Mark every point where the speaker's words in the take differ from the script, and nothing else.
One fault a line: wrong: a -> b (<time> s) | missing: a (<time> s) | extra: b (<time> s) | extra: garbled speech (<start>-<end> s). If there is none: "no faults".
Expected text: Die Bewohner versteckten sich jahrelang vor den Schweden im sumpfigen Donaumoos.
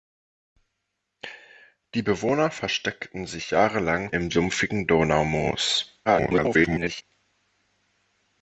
missing: vor den Schweden (4.1 s)
extra: garbled speech (6.0-7.0 s)